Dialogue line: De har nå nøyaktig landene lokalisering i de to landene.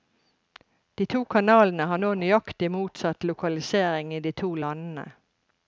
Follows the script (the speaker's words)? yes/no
no